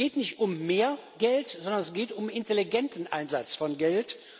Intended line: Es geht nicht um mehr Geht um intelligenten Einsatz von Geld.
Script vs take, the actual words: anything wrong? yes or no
yes